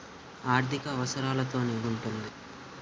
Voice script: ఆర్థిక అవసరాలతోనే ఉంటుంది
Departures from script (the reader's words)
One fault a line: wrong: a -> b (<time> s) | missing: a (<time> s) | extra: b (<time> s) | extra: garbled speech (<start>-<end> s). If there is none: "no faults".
no faults